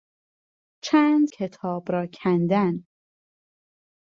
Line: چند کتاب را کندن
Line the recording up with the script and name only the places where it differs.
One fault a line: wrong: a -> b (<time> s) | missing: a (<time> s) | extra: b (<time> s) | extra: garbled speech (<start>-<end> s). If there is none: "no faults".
no faults